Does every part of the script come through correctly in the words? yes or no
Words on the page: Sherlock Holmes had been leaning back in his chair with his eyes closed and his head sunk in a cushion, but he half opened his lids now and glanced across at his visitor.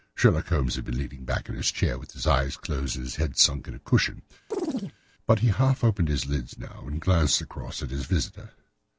yes